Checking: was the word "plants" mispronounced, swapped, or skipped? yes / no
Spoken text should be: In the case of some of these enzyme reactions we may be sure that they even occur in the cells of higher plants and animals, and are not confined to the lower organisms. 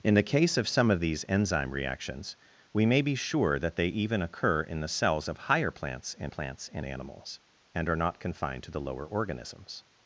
no